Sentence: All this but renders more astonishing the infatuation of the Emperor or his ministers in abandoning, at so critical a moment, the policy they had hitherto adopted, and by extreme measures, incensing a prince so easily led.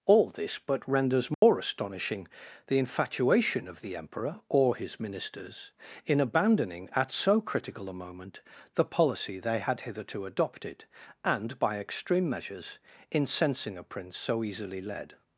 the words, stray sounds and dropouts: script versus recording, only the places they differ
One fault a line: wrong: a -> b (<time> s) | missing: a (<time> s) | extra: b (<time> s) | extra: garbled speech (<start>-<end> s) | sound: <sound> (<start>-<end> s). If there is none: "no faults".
sound: dropout (1.3-1.4 s)